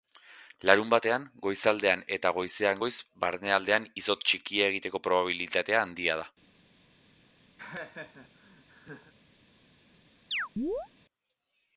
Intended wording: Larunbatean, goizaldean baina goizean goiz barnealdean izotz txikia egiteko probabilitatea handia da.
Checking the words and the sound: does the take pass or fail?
fail